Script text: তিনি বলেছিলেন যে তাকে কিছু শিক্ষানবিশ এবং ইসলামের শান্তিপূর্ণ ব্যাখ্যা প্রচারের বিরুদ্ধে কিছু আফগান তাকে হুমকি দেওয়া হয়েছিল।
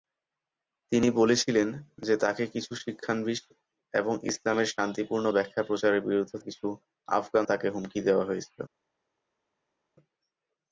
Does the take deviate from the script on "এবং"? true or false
false